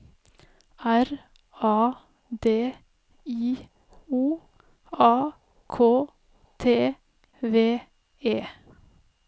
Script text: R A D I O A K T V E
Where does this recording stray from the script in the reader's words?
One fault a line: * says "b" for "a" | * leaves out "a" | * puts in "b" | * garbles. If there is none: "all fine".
all fine